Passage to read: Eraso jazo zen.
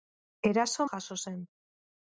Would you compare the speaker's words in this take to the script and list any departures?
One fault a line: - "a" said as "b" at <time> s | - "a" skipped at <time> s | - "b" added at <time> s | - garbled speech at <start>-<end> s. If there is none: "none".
none